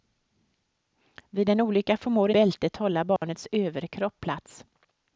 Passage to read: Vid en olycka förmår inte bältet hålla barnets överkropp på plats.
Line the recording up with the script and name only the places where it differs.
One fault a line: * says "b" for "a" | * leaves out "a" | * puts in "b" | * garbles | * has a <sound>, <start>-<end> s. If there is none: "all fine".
* leaves out "inte"
* has a dropout, 3.2-3.2 s
* leaves out "på"